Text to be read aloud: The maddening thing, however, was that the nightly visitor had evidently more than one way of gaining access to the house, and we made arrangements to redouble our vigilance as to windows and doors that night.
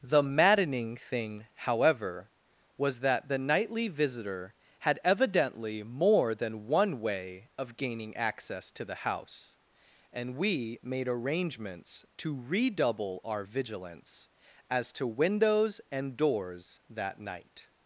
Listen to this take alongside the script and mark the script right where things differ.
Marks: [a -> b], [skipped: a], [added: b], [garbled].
The maddening thing, however, was that the nightly visitor had evidently more than one way of gaining access to the house, and we made arrangements to redouble our vigilance as to windows and doors that night.